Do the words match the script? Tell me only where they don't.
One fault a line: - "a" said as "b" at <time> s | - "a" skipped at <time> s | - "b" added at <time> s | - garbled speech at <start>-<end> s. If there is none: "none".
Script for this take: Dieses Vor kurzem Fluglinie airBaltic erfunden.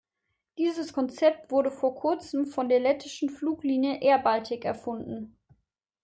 - "Konzept wurde" added at 0.9 s
- "von der lettischen" added at 2.4 s